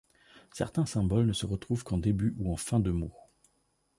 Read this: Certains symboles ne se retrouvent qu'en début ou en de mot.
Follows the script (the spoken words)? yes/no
no